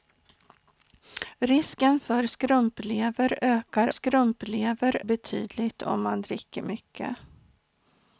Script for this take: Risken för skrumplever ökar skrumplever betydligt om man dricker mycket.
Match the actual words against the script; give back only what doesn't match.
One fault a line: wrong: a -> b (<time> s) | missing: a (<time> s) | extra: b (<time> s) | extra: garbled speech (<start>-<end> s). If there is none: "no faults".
no faults